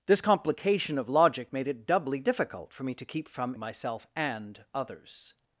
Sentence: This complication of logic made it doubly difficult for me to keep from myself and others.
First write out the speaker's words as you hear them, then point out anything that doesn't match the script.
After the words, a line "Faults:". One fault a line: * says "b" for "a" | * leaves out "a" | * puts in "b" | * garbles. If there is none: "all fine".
This complication of logic made it doubly difficult for me to keep from myself and others.
Faults:
all fine